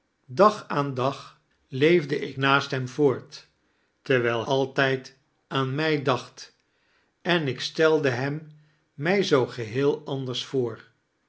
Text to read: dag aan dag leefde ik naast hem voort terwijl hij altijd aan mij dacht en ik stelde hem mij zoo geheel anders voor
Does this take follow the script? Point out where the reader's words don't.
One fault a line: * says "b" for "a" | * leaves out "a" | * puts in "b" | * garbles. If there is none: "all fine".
* leaves out "hij"